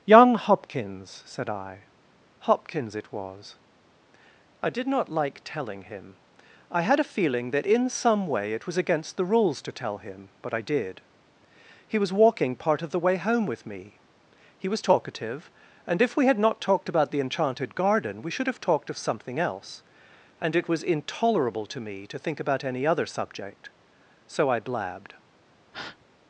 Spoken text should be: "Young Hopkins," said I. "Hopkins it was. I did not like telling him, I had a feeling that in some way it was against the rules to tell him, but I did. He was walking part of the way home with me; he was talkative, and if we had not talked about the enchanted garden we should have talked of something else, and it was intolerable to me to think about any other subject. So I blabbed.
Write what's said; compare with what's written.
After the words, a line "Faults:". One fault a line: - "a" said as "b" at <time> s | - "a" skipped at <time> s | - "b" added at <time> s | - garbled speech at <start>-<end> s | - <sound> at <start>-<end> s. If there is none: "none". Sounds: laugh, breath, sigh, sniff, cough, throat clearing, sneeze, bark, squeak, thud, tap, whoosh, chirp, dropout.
"Young Hopkins," said I. "Hopkins it was. I did not like telling him, I had a feeling that in some way it was against the rules to tell him, but I did. He was walking part of the way home with me; he was talkative, and if we had not talked about the enchanted garden we should have talked of something else, and it was intolerable to me to think about any other subject. So I blabbed.
Faults:
- breath at 25.7-26.1 s